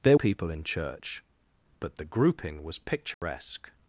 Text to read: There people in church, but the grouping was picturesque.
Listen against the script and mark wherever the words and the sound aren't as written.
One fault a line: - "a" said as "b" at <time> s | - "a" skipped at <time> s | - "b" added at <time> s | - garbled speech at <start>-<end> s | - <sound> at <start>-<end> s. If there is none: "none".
- dropout at 3.1-3.2 s